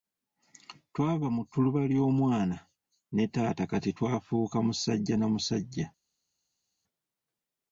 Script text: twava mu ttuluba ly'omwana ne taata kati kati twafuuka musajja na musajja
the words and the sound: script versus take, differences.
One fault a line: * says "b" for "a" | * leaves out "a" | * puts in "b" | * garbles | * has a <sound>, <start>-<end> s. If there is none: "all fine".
* leaves out "kati"